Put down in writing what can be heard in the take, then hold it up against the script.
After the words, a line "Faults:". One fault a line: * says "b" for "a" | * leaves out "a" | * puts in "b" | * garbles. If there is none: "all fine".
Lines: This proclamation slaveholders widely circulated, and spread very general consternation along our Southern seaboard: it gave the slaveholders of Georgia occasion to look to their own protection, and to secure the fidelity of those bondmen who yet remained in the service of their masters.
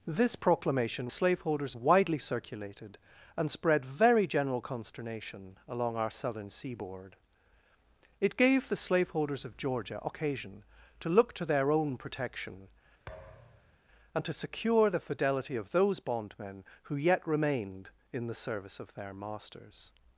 This proclamation slaveholders widely circulated, and spread very general consternation along our Southern seaboard: it gave the slaveholders of Georgia occasion to look to their own protection, and to secure the fidelity of those bondmen who yet remained in the service of their masters.
Faults:
all fine